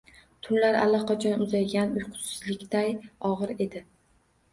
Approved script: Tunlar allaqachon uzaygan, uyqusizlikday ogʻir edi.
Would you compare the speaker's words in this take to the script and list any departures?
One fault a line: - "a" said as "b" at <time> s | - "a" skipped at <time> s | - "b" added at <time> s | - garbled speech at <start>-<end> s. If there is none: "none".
none